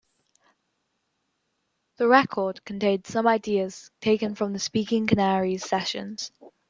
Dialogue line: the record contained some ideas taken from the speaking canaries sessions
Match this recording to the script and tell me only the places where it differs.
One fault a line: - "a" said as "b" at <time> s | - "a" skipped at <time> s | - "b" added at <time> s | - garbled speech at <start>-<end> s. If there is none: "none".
none